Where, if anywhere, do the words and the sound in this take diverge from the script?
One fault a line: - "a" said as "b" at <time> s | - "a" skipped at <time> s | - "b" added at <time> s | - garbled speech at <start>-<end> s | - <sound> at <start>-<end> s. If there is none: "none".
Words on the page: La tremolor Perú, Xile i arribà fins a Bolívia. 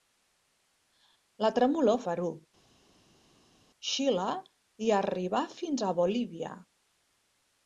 none